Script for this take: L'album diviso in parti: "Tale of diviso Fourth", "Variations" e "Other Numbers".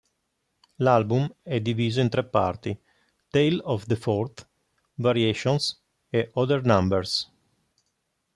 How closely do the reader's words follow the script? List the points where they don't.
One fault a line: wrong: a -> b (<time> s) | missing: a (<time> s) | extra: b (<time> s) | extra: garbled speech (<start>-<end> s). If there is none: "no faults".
extra: è (1.4 s)
extra: tre (2.1 s)
wrong: diviso -> the (3.9 s)